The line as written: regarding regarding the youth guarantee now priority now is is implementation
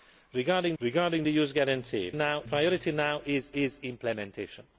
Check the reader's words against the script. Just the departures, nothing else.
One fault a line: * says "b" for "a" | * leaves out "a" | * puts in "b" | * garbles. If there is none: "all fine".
all fine